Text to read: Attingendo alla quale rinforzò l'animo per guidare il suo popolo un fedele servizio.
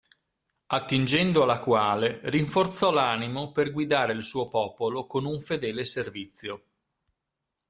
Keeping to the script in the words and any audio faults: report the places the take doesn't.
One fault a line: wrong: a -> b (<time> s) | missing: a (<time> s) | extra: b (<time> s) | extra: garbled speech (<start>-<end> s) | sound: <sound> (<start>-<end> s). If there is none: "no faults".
extra: con (5.0 s)